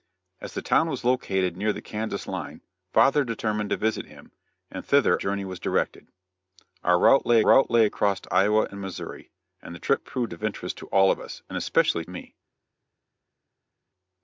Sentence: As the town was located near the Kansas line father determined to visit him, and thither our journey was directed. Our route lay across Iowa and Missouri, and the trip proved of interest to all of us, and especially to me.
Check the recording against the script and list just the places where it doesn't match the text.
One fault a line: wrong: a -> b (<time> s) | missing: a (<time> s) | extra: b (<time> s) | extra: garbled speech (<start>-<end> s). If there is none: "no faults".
missing: our (5.2 s)
extra: route lay (7.4 s)
missing: to (12.0 s)